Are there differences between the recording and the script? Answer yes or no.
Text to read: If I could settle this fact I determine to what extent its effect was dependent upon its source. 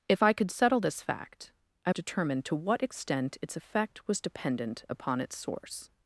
no